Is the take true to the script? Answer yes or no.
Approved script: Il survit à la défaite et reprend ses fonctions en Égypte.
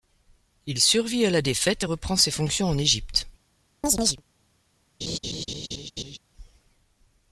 yes